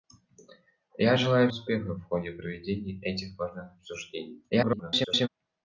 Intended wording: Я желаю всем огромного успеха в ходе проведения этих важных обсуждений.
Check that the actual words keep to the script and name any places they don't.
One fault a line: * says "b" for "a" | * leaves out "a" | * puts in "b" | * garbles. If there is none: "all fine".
* leaves out "всем огромного"
* garbles